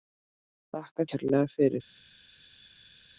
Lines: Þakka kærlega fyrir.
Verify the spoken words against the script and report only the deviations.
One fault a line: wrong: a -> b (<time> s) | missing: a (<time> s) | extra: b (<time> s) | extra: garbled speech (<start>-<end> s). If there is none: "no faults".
no faults